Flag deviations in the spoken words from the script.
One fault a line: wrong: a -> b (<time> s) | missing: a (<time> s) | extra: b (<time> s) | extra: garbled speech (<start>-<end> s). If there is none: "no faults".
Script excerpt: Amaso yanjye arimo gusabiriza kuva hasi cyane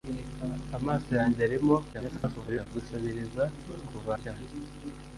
extra: garbled speech (1.9-2.7 s)
missing: hasi (4.1 s)